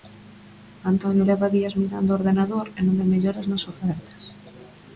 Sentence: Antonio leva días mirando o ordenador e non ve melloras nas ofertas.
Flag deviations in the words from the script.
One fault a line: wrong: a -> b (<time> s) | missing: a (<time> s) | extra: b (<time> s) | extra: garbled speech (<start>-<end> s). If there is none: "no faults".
no faults